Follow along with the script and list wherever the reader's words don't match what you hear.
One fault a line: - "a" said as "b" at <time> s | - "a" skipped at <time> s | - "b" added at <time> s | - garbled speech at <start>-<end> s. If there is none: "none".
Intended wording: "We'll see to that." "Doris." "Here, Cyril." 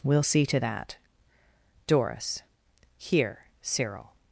none